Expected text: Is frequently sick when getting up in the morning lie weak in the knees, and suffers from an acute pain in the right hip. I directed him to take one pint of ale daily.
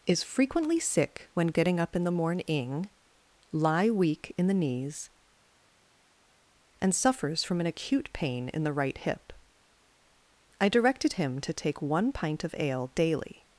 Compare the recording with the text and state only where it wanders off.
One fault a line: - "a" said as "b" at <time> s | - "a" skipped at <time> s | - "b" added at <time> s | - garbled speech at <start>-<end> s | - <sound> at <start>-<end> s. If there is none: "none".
none